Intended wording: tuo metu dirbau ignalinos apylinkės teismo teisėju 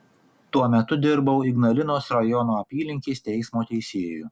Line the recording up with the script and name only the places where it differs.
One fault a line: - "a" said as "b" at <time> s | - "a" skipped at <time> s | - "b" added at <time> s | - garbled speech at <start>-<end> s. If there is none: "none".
- "rajono" added at 2.2 s